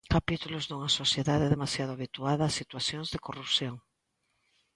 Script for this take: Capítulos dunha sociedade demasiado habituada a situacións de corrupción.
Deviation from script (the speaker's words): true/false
false